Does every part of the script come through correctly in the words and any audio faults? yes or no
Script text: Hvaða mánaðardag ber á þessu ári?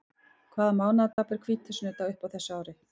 no